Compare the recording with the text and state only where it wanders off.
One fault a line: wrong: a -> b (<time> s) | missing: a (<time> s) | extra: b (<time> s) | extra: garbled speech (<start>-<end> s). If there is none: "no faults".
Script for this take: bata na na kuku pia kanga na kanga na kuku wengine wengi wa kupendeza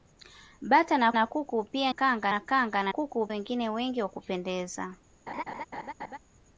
no faults